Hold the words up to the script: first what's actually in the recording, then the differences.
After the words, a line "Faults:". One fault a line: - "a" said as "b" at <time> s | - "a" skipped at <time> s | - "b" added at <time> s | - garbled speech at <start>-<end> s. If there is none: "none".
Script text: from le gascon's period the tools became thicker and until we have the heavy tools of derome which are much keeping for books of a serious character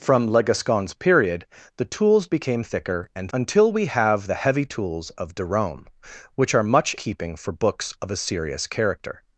from le gascon's period the tools became thicker and until we have the heavy tools of derome which are much keeping for books of a serious character
Faults:
none